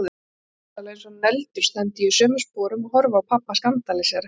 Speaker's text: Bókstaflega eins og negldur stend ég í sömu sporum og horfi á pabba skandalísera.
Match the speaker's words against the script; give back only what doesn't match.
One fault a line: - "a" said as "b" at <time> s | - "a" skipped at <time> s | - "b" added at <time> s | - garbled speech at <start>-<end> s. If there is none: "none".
none